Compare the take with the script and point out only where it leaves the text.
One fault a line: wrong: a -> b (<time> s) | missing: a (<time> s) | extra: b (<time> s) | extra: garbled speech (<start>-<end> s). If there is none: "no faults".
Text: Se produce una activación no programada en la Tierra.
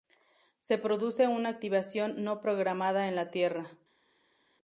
no faults